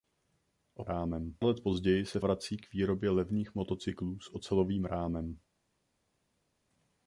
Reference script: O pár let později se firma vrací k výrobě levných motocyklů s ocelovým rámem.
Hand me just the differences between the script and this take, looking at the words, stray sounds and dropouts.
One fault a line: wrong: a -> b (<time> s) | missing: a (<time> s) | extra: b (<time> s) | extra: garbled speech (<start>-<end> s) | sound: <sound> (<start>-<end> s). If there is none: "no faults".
wrong: pár -> rámem (0.8 s)
missing: firma (2.2 s)